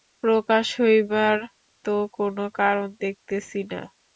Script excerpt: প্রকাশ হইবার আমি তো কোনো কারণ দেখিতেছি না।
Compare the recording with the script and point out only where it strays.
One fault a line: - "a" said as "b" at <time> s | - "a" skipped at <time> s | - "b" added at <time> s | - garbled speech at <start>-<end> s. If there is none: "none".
- "আমি" skipped at 1.4 s